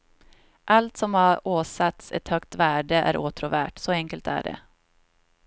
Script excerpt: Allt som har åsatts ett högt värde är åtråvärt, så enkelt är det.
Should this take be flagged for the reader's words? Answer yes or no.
no